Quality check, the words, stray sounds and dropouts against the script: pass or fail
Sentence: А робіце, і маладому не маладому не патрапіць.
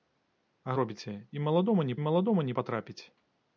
pass